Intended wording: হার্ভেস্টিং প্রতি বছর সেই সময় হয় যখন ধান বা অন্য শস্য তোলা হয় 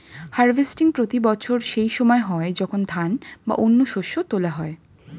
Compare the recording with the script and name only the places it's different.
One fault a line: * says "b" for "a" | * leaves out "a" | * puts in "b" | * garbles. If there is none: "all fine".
all fine